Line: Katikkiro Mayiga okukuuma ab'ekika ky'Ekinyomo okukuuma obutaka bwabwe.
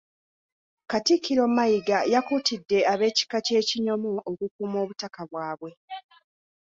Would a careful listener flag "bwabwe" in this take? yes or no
no